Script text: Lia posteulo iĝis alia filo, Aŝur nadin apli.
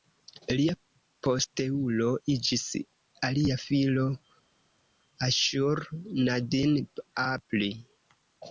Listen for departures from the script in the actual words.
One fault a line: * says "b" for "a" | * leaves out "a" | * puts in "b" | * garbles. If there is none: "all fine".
all fine